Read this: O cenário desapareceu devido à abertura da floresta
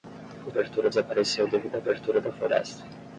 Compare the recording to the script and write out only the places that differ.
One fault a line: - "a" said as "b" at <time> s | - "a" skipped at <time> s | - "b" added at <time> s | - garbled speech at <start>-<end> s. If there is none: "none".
- "cenário" said as "abertura" at 0.5 s